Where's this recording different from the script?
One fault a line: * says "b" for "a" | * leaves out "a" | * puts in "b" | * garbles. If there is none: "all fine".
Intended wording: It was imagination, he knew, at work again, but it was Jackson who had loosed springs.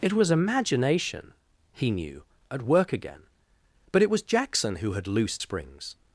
all fine